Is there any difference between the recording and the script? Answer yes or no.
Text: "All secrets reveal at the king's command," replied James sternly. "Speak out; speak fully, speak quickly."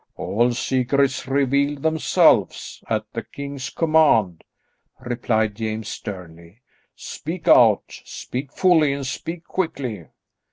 yes